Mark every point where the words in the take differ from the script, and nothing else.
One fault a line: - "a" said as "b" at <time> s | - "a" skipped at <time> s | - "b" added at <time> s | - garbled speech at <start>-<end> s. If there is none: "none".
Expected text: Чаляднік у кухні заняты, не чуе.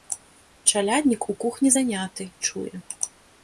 - "не" skipped at 2.3 s